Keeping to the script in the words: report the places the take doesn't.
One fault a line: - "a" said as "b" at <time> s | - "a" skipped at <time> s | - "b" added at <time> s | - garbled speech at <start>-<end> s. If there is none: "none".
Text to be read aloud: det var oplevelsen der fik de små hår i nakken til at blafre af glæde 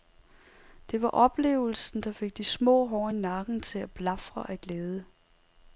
none